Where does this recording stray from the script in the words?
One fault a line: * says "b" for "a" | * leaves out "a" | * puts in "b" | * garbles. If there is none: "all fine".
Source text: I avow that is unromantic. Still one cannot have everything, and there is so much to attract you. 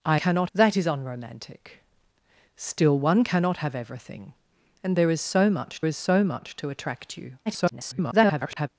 * says "cannot" for "avow"
* puts in "is so much"
* garbles